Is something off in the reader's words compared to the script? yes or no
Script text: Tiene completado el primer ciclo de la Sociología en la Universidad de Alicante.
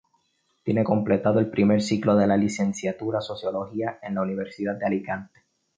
yes